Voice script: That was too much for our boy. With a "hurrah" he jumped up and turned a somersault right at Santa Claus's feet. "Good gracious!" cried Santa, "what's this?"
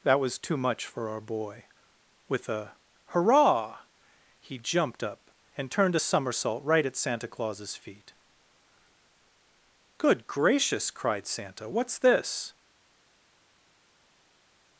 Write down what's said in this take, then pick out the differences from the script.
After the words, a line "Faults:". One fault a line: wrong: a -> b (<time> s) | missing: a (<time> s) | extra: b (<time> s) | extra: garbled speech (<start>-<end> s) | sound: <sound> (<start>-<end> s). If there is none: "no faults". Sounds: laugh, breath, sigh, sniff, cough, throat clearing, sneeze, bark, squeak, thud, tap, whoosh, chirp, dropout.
That was too much for our boy. With a "hurrah" he jumped up and turned a somersault right at Santa Claus's feet. "Good gracious!" cried Santa, "what's this?"
Faults:
no faults